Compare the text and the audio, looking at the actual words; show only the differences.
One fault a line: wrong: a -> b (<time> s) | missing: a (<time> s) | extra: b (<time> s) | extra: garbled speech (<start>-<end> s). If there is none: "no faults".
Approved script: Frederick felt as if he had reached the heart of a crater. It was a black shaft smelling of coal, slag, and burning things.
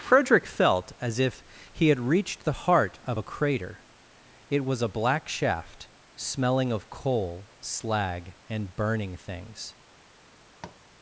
no faults